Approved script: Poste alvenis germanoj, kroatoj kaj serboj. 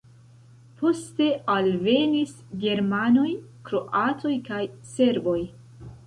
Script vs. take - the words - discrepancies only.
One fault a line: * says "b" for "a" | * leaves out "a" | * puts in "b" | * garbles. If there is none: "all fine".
all fine